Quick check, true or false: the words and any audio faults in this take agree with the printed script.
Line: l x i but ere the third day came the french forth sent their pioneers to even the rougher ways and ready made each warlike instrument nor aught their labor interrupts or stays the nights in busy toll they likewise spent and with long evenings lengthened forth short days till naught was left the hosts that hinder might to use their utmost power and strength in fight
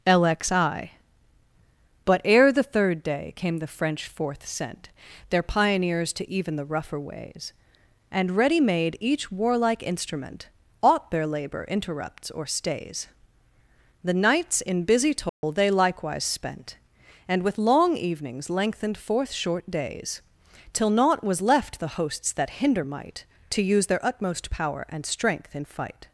false